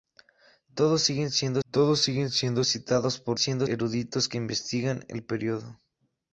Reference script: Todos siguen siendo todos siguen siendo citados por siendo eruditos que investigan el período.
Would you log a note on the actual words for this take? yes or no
no